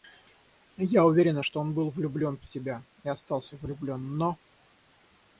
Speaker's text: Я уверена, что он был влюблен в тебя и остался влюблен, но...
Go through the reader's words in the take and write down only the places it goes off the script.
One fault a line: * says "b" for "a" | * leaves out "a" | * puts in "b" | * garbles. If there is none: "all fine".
all fine